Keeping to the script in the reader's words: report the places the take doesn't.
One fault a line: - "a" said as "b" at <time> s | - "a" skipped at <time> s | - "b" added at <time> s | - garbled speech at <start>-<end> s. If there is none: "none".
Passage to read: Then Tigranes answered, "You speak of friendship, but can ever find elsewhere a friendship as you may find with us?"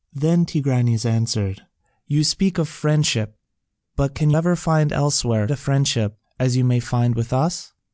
none